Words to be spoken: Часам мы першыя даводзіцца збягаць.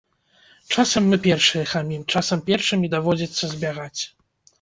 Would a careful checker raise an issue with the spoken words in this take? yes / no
yes